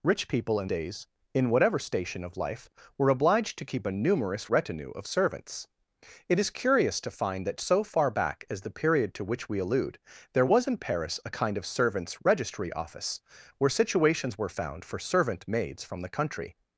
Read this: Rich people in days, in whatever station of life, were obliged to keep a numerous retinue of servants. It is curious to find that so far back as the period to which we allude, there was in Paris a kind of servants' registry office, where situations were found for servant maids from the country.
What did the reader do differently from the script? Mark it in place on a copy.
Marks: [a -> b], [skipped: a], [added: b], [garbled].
Rich people in days, in whatever station of life, were obliged to keep a numerous retinue of servants. It is curious to find that so far back as the period to which we allude, there was in Paris a kind of servants' registry office, where situations were found for servant maids from the country.